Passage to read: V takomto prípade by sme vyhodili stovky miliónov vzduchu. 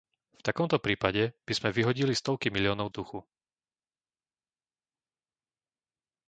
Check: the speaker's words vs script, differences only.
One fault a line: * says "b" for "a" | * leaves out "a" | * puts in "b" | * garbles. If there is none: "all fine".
all fine